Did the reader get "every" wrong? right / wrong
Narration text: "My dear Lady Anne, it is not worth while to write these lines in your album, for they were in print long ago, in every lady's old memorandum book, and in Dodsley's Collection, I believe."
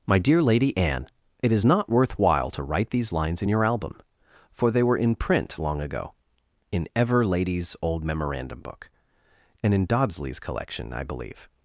wrong